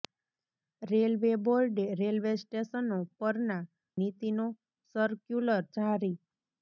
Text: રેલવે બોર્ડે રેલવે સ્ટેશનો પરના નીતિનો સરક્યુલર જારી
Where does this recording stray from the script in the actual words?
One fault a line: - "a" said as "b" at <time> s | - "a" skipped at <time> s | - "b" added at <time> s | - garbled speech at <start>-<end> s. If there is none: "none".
none